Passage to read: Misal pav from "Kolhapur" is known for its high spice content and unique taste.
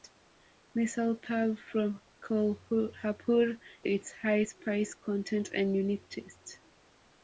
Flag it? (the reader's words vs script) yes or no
yes